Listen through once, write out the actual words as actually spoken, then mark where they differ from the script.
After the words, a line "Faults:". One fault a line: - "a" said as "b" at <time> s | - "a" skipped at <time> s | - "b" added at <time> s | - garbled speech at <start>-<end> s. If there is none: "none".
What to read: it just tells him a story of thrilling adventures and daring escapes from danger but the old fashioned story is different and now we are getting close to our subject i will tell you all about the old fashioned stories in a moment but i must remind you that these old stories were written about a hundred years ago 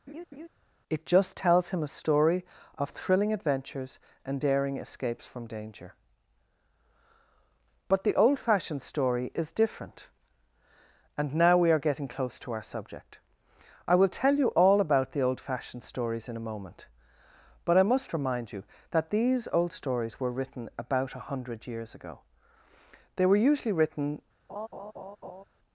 it just tells him a story of thrilling adventures and daring escapes from danger but the old fashioned story is different and now we are getting close to our subject i will tell you all about the old fashioned stories in a moment but i must remind you that these old stories were written about a hundred years ago they were usually written
Faults:
- "they were usually written" added at 23.2 s